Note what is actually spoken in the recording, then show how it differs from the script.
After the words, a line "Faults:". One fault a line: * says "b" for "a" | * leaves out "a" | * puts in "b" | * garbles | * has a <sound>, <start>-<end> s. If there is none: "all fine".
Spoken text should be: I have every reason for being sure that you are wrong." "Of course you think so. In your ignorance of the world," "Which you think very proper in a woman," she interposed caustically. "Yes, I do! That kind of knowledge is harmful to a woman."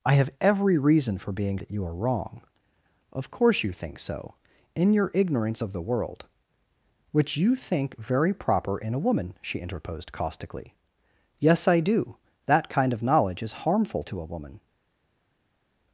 I have every reason for being that you are wrong." "Of course you think so. In your ignorance of the world," "Which you think very proper in a woman," she interposed caustically. "Yes, I do! That kind of knowledge is harmful to a woman."
Faults:
* leaves out "sure"